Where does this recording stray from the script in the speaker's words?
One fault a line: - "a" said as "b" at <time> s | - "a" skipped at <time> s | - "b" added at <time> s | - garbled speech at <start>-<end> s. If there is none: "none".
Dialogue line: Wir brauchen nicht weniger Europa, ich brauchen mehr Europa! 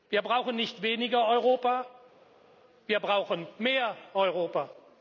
- "ich" said as "wir" at 2.9 s